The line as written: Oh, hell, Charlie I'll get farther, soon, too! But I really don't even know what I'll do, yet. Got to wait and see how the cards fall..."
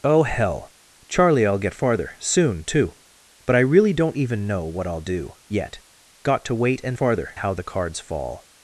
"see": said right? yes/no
no